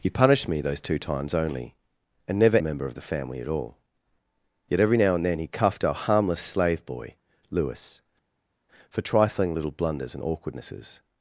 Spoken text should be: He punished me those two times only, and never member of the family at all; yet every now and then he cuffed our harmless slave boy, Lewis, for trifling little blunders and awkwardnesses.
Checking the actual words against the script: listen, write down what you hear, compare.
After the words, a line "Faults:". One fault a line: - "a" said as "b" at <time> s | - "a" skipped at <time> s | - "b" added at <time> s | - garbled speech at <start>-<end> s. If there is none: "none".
He punished me those two times only, and never member of the family at all; yet every now and then he cuffed our harmless slave boy, Lewis, for trifling little blunders and awkwardnesses.
Faults:
none